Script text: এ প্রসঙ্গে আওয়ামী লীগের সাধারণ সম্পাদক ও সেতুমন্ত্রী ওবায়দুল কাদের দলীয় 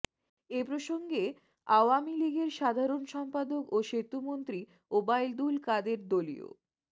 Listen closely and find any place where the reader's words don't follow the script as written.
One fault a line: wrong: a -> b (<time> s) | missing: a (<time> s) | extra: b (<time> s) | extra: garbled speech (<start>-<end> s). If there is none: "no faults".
no faults